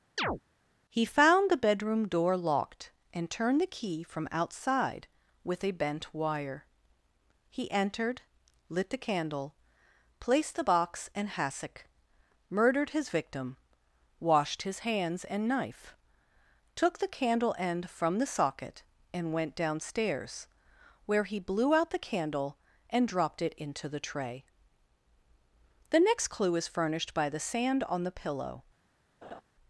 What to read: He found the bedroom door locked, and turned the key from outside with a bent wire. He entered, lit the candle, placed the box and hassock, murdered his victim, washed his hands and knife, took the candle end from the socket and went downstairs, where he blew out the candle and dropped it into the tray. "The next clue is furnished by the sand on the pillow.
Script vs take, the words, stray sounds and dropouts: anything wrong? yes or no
yes